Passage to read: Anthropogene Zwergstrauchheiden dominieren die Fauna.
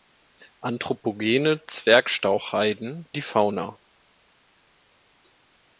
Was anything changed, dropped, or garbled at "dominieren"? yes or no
yes